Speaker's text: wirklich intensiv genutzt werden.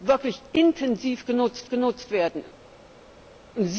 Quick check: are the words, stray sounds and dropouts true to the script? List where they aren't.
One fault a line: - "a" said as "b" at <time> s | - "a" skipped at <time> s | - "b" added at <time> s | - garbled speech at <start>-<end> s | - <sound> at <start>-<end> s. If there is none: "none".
- "genutzt" added at 1.7 s